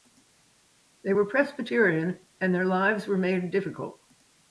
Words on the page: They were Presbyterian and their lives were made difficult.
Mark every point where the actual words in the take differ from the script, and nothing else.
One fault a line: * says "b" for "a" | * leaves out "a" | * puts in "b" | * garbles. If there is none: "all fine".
all fine